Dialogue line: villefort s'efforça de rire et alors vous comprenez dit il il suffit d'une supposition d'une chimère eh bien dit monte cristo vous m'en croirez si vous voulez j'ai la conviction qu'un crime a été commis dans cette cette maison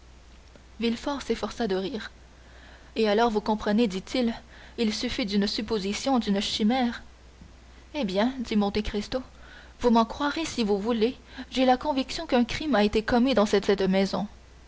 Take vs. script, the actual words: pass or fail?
pass